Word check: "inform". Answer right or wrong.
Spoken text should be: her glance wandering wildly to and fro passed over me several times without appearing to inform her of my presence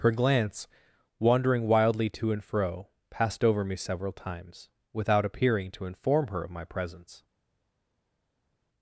right